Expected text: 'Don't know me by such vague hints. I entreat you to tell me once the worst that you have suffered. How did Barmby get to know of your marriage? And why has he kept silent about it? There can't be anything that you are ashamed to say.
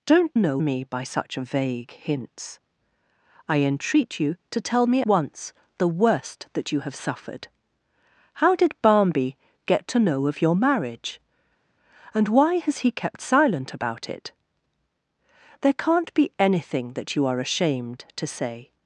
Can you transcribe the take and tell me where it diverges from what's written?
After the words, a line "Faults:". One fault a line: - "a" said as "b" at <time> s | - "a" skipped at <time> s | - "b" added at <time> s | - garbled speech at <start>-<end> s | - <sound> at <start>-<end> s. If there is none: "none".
'Don't know me by such vague hints. I entreat you to tell me once the worst that you have suffered. How did Barmby get to know of your marriage? And why has he kept silent about it? There can't be anything that you are ashamed to say.
Faults:
none